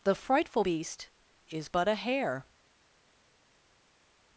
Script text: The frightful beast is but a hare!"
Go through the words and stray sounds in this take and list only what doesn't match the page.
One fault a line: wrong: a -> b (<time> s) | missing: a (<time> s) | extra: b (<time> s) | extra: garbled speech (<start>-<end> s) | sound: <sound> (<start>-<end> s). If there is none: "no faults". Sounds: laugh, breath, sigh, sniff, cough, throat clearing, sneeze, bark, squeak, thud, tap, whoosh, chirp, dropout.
no faults